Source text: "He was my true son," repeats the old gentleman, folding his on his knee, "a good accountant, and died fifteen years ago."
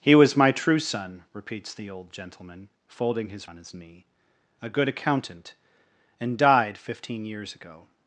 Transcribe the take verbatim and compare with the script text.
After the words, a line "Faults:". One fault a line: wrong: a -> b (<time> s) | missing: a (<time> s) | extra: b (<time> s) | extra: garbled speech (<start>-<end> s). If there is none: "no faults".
"He was my true son," repeats the old gentleman, folding his on his knee, "a good accountant, and died fifteen years ago."
Faults:
no faults